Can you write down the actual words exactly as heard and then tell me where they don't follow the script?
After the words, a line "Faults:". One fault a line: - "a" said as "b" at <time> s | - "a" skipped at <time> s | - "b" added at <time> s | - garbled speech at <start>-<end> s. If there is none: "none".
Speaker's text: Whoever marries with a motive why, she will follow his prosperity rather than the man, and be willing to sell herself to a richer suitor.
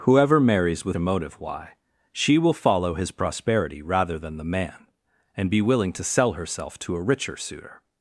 Whoever marries with a motive why, she will follow his prosperity rather than the man, and be willing to sell herself to a richer suitor.
Faults:
none